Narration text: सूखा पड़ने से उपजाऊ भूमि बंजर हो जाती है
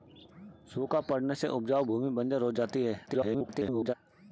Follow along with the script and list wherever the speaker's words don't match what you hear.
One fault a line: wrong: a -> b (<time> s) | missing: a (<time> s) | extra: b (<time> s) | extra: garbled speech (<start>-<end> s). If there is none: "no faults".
extra: garbled speech (3.1-3.9 s)